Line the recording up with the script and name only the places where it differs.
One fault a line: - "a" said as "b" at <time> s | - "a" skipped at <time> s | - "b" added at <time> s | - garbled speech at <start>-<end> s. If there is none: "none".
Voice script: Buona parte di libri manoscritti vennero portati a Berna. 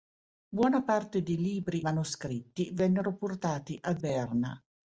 none